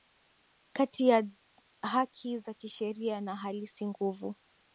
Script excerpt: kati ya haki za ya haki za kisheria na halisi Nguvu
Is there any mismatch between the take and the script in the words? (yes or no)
yes